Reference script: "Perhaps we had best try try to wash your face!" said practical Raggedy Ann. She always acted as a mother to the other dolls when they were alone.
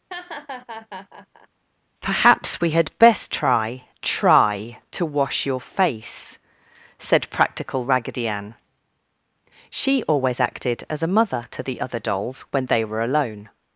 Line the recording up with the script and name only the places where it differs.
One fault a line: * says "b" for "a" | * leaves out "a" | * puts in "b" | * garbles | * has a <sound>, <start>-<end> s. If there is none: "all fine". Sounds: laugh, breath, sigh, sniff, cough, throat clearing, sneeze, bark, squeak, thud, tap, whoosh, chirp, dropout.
* has a laugh, 0.1-1.5 s